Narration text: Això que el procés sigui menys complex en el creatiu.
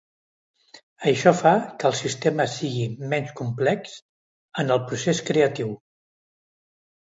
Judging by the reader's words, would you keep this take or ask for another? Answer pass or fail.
fail